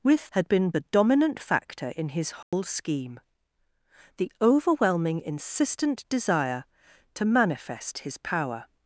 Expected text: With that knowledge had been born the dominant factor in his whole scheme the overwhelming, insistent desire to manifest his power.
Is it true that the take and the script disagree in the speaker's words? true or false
true